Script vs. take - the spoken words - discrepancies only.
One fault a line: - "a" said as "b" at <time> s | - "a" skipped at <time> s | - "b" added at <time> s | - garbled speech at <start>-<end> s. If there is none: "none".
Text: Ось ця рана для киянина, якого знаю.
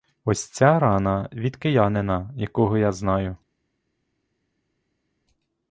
- "для" said as "від" at 1.3 s
- "я" added at 2.8 s